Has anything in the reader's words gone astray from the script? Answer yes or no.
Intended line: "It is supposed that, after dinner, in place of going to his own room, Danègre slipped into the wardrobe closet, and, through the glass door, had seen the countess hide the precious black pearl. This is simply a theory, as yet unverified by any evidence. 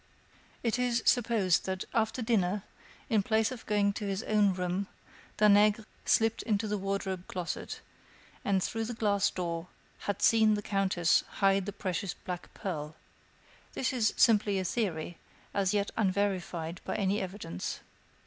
no